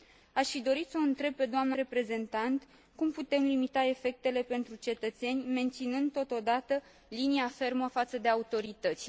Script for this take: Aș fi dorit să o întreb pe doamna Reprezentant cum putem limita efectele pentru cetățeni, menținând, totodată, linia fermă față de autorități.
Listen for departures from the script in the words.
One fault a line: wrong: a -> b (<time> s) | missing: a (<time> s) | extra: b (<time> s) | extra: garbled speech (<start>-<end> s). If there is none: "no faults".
no faults